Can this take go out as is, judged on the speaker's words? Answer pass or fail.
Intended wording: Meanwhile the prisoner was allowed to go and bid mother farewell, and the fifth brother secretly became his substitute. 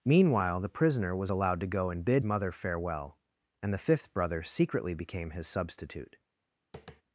pass